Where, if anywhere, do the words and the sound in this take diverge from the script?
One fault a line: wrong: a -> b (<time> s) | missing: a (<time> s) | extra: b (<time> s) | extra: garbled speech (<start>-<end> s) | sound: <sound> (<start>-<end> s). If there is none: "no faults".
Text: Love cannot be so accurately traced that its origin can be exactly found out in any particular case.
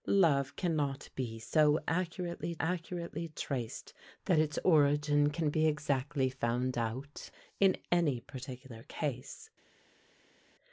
extra: accurately (2.6 s)